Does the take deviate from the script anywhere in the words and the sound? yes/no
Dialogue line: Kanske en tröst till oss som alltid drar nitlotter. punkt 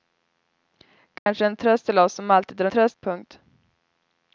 yes